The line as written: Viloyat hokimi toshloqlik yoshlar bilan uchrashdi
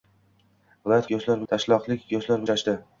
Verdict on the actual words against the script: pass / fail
fail